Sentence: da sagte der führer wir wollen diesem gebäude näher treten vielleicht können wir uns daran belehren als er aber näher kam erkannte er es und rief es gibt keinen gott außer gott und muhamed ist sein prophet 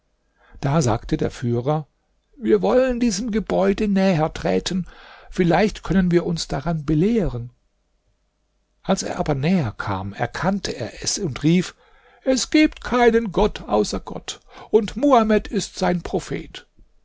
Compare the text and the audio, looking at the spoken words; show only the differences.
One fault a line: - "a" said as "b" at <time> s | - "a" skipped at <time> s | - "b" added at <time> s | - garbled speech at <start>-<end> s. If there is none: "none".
none